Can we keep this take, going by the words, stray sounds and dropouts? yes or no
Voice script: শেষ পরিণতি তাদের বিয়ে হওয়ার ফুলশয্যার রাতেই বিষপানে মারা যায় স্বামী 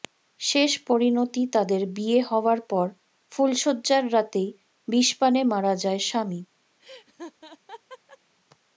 no